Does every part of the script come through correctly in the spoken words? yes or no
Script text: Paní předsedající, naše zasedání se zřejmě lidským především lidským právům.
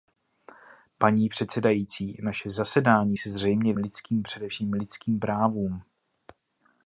yes